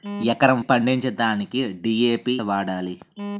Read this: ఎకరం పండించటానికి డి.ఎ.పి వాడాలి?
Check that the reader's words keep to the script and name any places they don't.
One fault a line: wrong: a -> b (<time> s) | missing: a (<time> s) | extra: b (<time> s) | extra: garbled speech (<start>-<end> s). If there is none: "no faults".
no faults